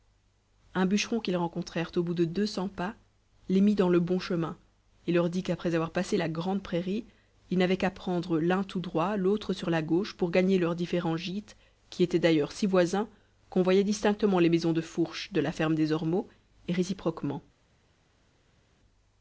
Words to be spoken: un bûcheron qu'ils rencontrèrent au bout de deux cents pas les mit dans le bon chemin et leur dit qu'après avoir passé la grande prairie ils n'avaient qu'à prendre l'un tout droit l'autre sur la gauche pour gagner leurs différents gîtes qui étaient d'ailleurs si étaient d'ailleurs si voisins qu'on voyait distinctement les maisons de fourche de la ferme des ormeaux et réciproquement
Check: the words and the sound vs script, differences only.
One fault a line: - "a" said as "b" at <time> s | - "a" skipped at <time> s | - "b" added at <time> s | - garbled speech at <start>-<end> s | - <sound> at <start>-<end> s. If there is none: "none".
- "étaient d'ailleurs si" skipped at 12.7 s